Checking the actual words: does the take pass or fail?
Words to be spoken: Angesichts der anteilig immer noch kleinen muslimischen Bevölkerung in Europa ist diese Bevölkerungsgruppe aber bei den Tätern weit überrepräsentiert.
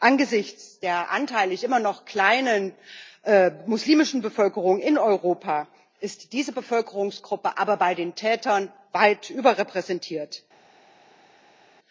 pass